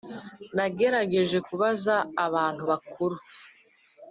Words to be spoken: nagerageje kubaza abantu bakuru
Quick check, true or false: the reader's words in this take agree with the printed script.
true